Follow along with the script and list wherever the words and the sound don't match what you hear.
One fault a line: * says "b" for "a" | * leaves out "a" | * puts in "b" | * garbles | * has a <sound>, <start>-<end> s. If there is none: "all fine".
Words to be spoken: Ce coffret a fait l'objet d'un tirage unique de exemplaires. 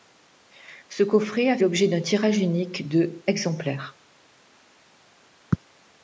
* leaves out "fait"